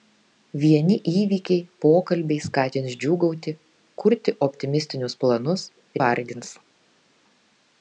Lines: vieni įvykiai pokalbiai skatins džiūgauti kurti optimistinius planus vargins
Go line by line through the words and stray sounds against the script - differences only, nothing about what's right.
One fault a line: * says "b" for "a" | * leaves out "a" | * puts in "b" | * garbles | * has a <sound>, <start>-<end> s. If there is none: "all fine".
all fine